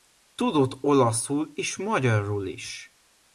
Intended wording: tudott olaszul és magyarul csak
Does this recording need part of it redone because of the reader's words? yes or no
yes